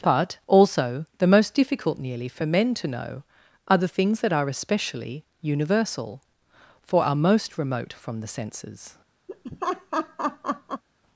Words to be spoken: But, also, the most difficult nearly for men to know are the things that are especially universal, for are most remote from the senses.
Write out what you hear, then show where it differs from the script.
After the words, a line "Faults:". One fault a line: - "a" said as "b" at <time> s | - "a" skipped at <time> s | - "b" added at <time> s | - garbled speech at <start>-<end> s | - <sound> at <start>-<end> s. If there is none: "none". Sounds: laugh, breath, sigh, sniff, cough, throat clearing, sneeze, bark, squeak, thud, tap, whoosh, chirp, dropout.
But, also, the most difficult nearly for men to know are the things that are especially universal, for are most remote from the senses.
Faults:
- laugh at 9.3-10.8 s